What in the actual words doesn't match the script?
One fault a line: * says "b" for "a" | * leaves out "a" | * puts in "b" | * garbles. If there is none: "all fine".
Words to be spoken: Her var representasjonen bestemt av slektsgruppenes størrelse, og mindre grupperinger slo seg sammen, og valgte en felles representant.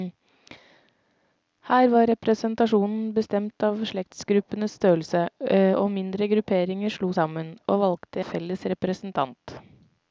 * leaves out "seg"
* leaves out "en"